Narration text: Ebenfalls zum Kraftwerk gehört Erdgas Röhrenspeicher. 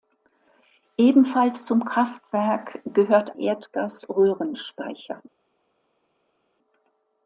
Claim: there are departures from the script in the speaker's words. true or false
false